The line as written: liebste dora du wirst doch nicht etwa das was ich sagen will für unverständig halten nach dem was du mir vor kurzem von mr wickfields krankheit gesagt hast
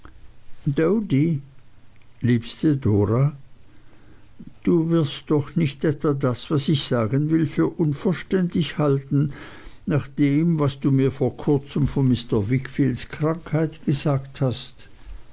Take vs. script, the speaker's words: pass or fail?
pass